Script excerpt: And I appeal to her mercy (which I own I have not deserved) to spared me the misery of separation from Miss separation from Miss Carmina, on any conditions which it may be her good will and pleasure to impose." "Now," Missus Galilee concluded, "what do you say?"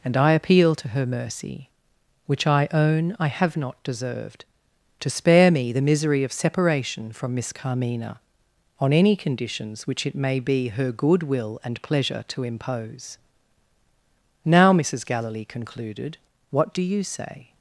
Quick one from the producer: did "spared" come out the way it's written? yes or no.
no